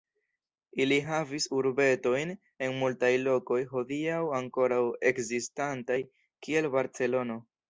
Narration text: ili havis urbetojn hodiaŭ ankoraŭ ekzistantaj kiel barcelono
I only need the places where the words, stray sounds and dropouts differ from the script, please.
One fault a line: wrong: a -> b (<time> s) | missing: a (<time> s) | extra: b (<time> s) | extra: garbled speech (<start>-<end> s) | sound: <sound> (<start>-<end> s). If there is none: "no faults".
extra: en multaj lokoj (2.7 s)